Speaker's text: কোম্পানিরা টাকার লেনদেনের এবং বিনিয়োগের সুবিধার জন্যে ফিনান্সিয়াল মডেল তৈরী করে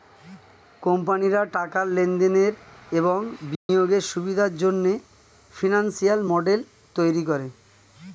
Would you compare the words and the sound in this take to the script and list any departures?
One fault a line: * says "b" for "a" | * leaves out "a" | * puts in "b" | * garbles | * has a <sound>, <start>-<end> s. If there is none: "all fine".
* has a dropout, 3.5-3.7 s